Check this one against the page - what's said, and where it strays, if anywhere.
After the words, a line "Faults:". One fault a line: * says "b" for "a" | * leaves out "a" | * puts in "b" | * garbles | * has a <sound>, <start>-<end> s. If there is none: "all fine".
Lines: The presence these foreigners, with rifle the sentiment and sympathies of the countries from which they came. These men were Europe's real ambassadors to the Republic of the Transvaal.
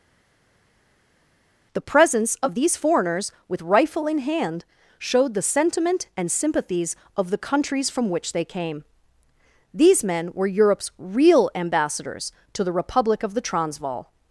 The presence of these foreigners, with rifle in hand, showed the sentiment and sympathies of the countries from which they came. These men were Europe's real ambassadors to the Republic of the Transvaal.
Faults:
* puts in "of"
* puts in "in hand showed"